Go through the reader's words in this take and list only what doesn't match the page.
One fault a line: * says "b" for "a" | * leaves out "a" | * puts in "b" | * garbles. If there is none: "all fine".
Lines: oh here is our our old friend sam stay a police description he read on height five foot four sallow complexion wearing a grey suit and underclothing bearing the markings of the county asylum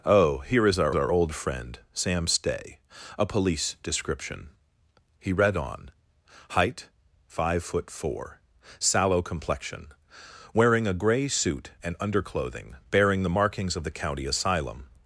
all fine